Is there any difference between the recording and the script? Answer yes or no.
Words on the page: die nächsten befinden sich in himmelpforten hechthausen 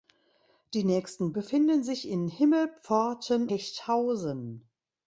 no